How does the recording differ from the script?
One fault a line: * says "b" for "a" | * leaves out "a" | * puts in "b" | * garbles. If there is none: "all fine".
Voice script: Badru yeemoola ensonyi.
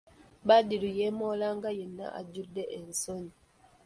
* puts in "nga yenna ajjudde"